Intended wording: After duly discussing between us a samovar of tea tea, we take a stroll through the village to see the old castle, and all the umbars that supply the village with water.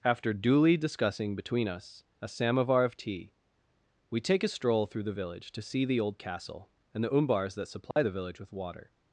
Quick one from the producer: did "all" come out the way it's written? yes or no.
no